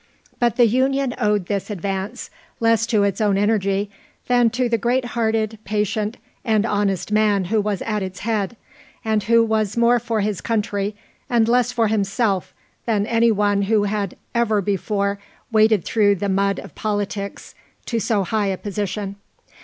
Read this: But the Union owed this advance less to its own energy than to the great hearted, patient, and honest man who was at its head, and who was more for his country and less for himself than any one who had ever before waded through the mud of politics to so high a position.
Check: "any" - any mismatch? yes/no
no